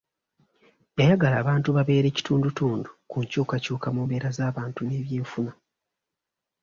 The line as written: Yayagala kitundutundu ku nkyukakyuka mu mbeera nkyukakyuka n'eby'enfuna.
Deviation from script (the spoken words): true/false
true